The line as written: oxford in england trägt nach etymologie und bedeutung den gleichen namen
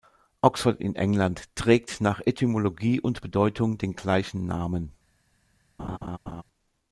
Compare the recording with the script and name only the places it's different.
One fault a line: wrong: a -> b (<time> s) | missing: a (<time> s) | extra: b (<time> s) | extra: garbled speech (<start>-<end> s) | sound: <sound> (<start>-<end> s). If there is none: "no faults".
sound: laugh (5.8-6.4 s)